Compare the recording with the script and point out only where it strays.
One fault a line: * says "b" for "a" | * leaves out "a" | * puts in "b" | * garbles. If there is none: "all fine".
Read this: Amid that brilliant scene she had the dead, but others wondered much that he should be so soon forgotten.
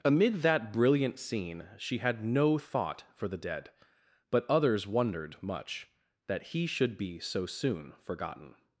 * puts in "no thought for"